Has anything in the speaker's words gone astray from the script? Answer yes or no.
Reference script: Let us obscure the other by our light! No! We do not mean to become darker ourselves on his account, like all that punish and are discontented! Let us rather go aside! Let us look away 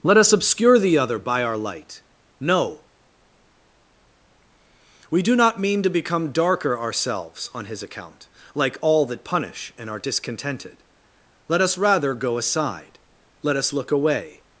no